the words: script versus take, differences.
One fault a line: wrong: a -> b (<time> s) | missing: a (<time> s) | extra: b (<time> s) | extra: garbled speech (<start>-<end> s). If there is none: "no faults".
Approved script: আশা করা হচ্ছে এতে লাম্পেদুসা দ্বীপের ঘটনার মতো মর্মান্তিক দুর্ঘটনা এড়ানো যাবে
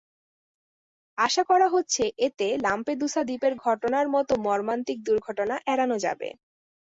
no faults